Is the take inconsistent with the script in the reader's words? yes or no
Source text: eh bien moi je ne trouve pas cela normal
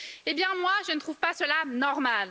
no